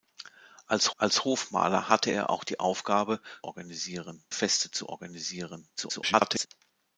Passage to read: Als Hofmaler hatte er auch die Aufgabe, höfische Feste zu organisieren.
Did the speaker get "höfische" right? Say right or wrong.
wrong